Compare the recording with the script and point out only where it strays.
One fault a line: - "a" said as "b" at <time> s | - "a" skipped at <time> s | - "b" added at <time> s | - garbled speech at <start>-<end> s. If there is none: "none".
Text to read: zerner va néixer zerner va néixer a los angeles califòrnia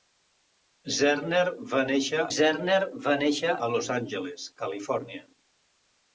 none